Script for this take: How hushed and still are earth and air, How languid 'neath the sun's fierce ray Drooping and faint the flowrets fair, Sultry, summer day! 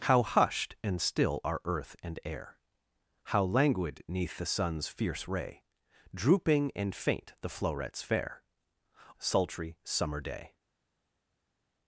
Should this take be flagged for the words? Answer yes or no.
no